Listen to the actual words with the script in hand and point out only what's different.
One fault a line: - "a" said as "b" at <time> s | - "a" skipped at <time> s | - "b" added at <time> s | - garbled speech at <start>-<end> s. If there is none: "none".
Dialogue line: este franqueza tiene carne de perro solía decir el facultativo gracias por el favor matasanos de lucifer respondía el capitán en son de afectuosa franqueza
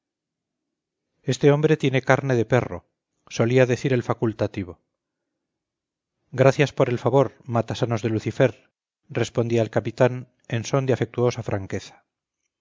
- "franqueza" said as "hombre" at 1.5 s